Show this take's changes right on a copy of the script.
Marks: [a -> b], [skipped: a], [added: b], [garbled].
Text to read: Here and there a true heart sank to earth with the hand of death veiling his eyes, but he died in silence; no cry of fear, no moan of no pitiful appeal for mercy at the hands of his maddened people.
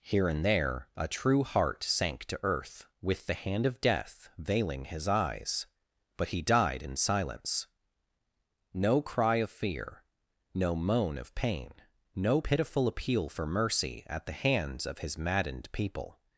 Here and there a true heart sank to earth with the hand of death veiling his eyes, but he died in silence; no cry of fear, no moan of [added: pain] no pitiful appeal for mercy at the hands of his maddened people.